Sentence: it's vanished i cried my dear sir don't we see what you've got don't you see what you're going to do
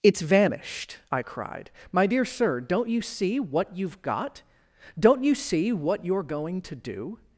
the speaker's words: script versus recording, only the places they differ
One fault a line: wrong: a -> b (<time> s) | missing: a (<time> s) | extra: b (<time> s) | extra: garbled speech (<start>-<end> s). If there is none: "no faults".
wrong: we -> you (2.9 s)